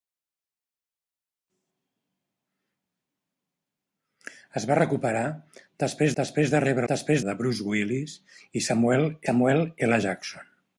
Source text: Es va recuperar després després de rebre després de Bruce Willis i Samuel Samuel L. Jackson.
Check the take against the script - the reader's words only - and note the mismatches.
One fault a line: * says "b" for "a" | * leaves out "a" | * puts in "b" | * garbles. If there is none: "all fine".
all fine